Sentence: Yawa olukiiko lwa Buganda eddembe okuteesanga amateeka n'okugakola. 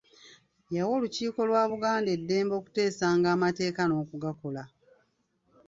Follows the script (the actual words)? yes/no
yes